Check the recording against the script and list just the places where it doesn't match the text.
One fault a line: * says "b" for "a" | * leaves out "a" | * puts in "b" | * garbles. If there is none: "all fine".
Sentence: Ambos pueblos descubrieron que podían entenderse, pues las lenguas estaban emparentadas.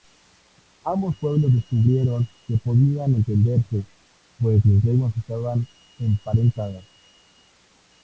all fine